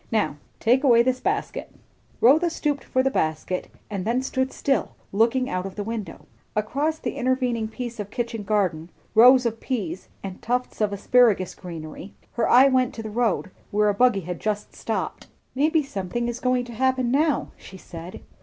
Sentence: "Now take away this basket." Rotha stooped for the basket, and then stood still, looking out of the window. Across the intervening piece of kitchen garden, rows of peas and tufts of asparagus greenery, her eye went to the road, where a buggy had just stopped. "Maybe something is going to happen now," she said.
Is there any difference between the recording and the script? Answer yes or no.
no